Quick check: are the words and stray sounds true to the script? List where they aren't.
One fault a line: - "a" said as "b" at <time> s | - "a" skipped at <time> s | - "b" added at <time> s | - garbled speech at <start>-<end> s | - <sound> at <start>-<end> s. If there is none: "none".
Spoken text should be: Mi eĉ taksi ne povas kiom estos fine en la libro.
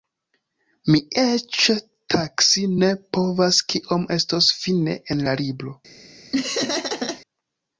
- laugh at 6.3-7.2 s